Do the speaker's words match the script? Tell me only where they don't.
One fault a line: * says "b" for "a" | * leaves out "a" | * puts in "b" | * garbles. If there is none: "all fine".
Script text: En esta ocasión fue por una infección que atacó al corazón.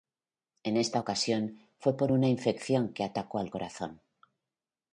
all fine